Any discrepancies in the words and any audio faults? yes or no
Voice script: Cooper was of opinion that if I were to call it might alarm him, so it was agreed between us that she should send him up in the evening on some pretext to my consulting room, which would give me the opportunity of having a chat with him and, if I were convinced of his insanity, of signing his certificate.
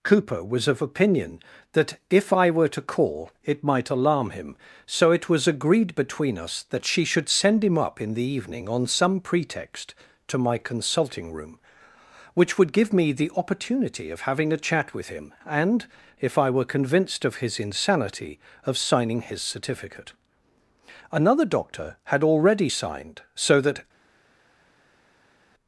yes